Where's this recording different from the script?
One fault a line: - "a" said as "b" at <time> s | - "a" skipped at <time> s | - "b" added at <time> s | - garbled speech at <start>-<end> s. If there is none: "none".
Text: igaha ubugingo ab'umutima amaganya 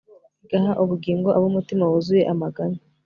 - "wuzuye" added at 1.9 s